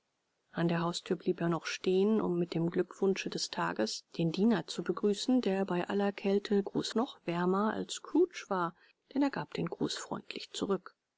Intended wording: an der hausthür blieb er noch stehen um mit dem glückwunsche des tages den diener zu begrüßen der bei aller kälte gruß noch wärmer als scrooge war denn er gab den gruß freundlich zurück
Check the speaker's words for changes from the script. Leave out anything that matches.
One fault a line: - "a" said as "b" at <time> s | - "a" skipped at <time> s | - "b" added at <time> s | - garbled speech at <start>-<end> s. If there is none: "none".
none